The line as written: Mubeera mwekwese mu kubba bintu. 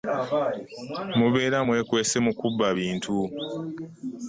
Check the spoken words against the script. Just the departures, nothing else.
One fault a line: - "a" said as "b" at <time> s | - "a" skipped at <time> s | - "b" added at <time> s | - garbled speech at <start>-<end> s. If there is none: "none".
none